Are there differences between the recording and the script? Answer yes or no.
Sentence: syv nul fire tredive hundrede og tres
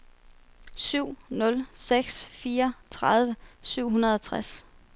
yes